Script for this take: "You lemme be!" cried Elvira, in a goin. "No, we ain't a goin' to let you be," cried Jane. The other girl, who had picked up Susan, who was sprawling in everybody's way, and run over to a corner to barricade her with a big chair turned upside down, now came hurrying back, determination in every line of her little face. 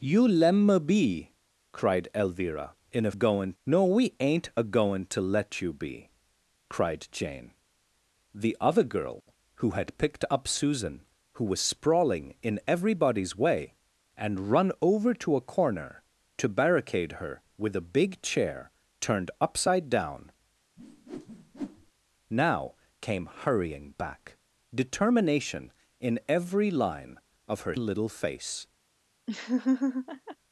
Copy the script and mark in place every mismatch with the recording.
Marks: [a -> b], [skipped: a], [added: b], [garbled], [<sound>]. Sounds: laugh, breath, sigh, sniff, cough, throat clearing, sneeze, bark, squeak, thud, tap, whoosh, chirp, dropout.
"You lemme be!" cried Elvira, in a goin. "No, we ain't a goin' to let you be," cried Jane. The other girl, who had picked up Susan, who was sprawling in everybody's way, and run over to a corner to barricade her with a big chair turned upside down, [whoosh] now came hurrying back, determination in every line of her little face. [laugh]